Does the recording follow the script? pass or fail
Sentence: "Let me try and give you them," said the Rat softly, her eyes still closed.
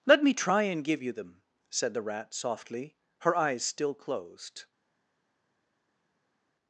pass